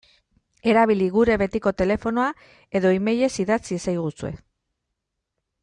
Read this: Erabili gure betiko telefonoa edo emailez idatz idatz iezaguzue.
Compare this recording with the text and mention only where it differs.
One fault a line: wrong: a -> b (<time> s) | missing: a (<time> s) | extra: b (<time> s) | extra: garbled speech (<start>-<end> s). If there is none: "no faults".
missing: idatz (3.6 s)